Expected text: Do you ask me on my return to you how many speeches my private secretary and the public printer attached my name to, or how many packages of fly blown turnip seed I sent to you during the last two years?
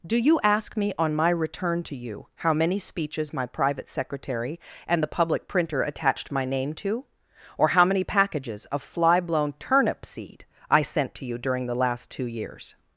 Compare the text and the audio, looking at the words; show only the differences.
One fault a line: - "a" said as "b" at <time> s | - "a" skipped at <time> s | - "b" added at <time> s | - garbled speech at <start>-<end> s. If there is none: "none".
none